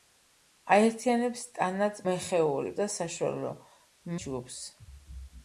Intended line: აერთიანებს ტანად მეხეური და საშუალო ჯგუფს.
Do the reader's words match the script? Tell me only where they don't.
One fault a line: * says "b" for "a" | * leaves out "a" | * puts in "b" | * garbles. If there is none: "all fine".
all fine